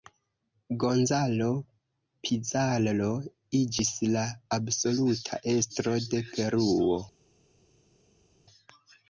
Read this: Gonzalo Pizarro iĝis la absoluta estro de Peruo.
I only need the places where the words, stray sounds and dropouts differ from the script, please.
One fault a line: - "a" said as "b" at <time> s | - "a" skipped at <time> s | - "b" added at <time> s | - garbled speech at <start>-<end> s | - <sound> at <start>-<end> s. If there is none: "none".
none